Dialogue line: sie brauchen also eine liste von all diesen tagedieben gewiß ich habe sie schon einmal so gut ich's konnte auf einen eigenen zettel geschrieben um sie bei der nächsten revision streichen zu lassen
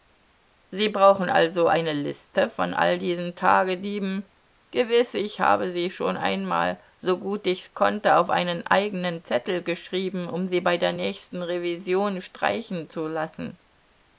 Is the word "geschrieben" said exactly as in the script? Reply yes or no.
yes